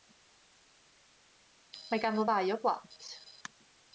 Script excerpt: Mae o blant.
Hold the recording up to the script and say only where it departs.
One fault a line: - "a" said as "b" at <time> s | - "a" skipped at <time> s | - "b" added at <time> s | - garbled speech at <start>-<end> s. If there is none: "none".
- "ganddo ddau" added at 2.0 s